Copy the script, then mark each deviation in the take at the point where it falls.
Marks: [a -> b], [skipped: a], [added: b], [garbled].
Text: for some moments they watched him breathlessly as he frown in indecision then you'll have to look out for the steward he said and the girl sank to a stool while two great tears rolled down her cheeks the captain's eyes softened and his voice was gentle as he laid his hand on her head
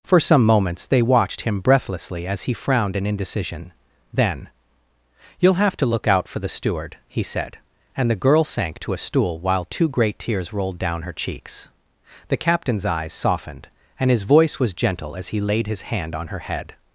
for some moments they watched him breathlessly as he [frown -> frowned] in indecision then you'll have to look out for the steward he said and the girl sank to a stool while two great tears rolled down her cheeks the captain's eyes softened and his voice was gentle as he laid his hand on her head